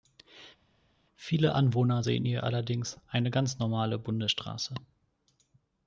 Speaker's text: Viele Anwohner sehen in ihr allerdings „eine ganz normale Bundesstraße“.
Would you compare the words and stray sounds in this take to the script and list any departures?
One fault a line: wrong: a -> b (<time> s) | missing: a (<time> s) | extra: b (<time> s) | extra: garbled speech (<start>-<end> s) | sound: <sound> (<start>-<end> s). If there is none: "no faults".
no faults